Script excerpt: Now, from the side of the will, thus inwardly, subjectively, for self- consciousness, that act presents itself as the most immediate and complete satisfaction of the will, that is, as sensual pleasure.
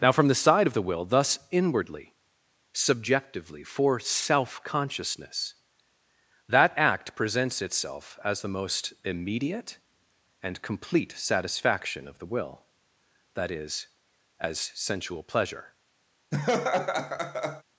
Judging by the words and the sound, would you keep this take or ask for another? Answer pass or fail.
fail